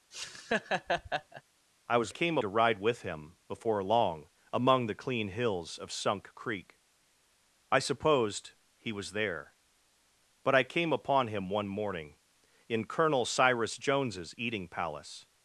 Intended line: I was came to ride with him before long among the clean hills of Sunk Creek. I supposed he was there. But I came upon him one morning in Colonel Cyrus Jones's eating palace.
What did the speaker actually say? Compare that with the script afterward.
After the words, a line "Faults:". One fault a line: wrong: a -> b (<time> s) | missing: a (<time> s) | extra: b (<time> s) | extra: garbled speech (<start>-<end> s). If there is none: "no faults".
I was came to ride with him before long among the clean hills of Sunk Creek. I supposed he was there. But I came upon him one morning in Colonel Cyrus Jones's eating palace.
Faults:
no faults